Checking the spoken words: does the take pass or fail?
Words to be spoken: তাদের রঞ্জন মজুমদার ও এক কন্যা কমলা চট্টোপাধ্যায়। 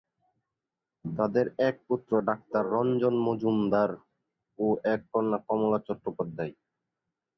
fail